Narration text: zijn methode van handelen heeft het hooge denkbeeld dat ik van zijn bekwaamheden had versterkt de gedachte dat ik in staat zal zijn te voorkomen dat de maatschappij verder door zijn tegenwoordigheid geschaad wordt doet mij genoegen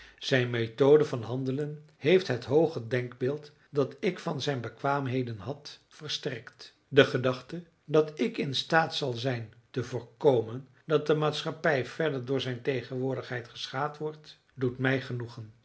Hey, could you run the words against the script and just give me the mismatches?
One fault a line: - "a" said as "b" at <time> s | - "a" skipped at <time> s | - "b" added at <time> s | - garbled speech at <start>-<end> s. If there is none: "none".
none